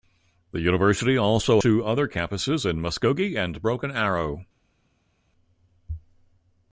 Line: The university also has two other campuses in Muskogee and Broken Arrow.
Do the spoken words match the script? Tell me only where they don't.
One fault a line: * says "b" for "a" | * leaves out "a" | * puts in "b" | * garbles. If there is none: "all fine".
* leaves out "has"